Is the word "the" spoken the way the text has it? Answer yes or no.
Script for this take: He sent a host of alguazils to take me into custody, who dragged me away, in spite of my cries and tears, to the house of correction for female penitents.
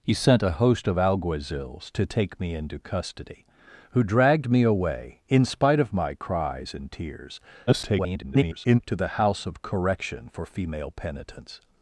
yes